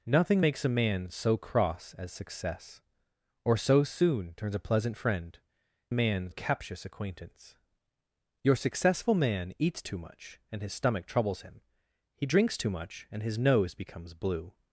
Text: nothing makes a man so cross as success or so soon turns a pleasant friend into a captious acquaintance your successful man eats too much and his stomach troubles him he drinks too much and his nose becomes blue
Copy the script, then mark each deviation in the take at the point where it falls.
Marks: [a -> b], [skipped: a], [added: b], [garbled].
nothing makes a man so cross as success or so soon turns a pleasant friend [into -> man] a captious acquaintance your successful man eats too much and his stomach troubles him he drinks too much and his nose becomes blue